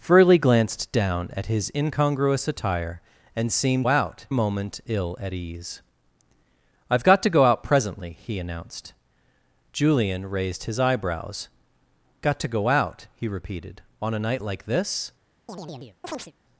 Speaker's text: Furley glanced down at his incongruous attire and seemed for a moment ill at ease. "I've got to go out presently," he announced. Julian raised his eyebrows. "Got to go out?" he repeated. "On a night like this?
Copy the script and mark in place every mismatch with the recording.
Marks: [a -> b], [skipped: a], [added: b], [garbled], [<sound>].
Furley glanced down at his incongruous attire and seemed [for -> out] a moment ill at ease. "I've got to go out presently," he announced. Julian raised his eyebrows. "Got to go out?" he repeated. "On a night like this? [chirp]